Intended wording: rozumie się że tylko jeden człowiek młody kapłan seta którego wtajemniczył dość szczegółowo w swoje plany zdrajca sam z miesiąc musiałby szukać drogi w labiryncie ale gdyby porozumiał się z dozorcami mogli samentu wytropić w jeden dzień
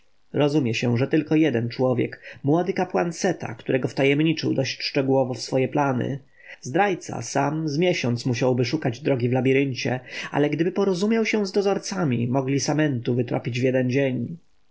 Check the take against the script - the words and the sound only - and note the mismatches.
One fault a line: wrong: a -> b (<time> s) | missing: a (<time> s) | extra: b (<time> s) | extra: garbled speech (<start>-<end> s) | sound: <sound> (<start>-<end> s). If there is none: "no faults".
no faults